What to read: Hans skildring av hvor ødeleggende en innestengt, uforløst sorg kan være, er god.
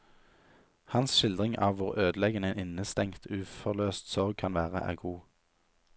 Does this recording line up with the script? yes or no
yes